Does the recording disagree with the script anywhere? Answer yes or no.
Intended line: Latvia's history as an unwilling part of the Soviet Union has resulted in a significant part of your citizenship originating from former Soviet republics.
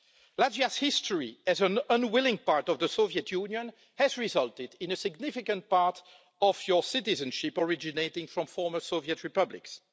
no